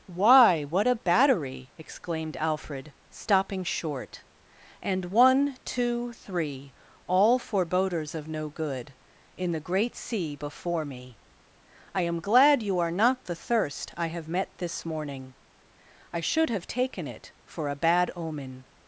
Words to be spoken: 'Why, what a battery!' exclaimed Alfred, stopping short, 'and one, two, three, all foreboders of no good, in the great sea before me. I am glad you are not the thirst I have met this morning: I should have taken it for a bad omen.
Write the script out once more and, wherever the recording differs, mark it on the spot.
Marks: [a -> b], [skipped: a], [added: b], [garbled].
'Why, what a battery!' exclaimed Alfred, stopping short, 'and one, two, three, all foreboders of no good, in the great sea before me. I am glad you are not the thirst I have met this morning: I should have taken it for a bad omen.